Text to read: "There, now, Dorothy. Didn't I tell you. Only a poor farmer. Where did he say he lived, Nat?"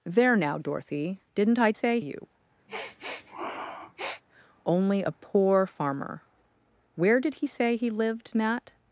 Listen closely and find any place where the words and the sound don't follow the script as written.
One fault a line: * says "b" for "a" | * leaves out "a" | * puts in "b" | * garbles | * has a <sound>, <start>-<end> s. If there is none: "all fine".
* says "say" for "tell"
* has a sniff, 2.7-4.2 s